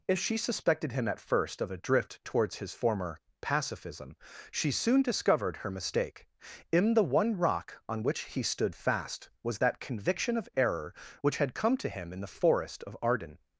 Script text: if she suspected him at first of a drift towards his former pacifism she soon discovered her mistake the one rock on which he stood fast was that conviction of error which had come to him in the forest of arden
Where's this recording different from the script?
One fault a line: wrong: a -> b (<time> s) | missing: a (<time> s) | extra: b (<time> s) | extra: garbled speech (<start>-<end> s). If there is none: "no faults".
extra: in (6.7 s)